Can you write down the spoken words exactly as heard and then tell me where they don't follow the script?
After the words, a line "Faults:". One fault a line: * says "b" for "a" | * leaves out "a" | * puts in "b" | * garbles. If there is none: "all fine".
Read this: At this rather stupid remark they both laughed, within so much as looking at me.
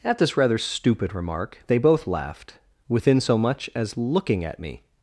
At this rather stupid remark they both laughed, within so much as looking at me.
Faults:
all fine